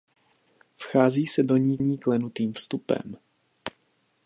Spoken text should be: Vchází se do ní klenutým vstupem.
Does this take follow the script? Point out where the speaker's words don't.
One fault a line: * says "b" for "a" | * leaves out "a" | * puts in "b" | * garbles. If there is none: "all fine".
* puts in "ní"